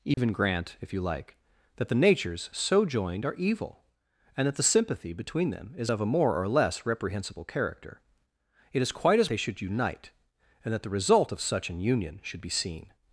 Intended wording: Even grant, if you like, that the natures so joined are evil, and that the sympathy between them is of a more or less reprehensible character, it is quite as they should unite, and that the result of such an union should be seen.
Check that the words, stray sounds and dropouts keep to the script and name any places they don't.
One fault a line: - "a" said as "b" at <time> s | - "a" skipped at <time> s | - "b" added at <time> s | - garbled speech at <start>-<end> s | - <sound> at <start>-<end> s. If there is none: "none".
- dropout at 0.1-0.2 s